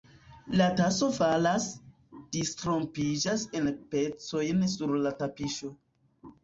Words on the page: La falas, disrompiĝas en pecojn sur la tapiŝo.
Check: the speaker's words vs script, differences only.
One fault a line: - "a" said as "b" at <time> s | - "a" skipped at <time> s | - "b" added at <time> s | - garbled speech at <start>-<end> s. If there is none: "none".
- "taso" added at 0.8 s